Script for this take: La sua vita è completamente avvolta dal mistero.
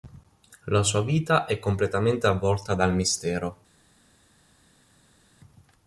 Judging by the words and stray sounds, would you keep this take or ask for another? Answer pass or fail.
pass